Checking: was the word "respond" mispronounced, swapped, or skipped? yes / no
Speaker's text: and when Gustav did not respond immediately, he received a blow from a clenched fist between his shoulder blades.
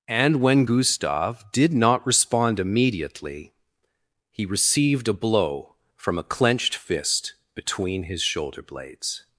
no